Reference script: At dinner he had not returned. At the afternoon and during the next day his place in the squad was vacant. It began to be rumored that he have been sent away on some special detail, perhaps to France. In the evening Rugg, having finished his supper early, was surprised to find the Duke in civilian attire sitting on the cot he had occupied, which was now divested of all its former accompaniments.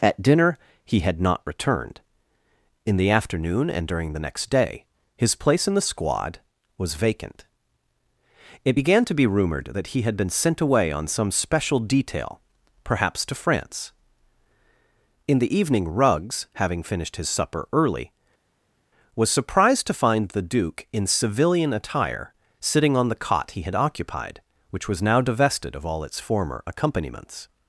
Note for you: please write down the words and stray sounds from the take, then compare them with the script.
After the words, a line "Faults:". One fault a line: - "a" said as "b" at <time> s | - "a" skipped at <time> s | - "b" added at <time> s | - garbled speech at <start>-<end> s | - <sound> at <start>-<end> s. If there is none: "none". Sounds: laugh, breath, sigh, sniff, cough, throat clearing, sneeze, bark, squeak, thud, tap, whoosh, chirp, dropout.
At dinner he had not returned. In the afternoon and during the next day his place in the squad was vacant. It began to be rumored that he had been sent away on some special detail, perhaps to France. In the evening Ruggs, having finished his supper early, was surprised to find the Duke in civilian attire sitting on the cot he had occupied, which was now divested of all its former accompaniments.
Faults:
- "At" said as "In" at 2.9 s
- "have" said as "had" at 10.0 s
- "Rugg" said as "Ruggs" at 15.9 s